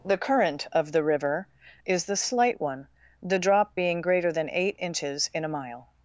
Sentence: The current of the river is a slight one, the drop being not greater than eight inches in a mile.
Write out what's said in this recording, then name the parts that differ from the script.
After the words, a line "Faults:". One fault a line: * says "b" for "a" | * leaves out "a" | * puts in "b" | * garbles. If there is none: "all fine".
The current of the river is the slight one, the drop being greater than eight inches in a mile.
Faults:
* says "the" for "a"
* leaves out "not"